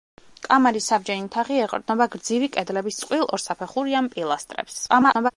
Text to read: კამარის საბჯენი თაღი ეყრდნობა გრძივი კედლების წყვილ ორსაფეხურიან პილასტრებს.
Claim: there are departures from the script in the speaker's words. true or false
true